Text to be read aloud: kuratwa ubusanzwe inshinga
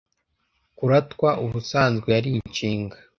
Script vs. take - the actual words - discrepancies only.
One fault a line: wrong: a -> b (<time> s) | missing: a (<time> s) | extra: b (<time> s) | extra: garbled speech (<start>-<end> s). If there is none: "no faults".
extra: yari (2.1 s)